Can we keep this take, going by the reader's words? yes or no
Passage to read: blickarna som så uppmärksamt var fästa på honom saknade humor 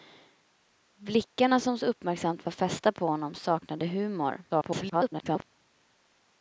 no